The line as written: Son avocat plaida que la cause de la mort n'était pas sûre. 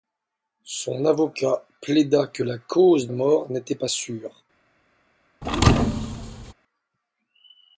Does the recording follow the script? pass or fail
fail